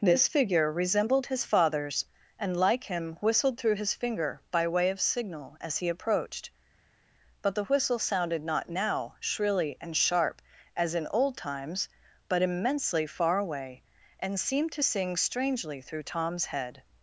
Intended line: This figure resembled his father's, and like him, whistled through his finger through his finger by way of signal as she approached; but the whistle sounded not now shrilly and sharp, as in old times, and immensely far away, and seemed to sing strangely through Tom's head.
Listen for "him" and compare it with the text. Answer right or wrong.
right